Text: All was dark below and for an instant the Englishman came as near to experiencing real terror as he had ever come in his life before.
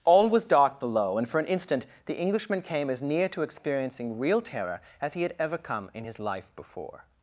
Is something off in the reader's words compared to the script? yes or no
no